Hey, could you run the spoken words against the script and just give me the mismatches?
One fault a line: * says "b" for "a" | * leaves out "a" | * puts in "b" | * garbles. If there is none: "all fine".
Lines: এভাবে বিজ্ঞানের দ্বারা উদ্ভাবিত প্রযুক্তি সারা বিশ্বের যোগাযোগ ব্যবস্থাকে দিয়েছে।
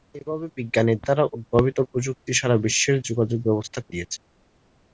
all fine